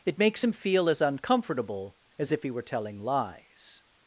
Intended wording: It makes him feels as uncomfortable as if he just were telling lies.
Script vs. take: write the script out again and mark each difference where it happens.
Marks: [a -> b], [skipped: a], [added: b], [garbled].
It makes him [feels -> feel] as uncomfortable as if he [skipped: just] were telling lies.